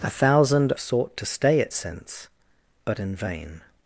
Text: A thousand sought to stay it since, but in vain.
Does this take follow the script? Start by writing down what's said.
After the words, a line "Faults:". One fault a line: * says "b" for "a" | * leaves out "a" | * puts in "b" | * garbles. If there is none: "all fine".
A thousand sought to stay it since, but in vain.
Faults:
all fine